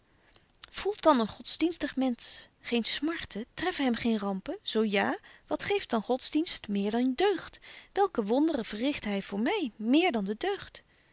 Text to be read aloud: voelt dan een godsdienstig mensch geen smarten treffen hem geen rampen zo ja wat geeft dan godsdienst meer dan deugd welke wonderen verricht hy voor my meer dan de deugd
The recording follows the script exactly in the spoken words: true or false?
true